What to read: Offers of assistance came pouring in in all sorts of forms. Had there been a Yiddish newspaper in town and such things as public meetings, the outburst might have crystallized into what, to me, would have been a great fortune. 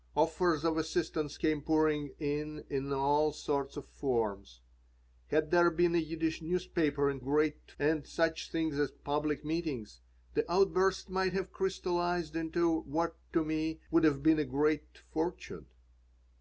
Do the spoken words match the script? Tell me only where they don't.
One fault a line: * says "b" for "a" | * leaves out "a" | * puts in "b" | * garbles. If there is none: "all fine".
* says "great" for "town"